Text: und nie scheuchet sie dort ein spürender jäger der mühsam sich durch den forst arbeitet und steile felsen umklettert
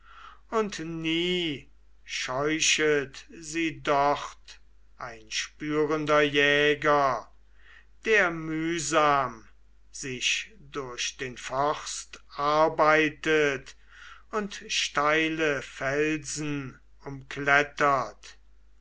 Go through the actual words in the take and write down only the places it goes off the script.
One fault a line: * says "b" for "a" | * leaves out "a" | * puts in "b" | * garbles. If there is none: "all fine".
all fine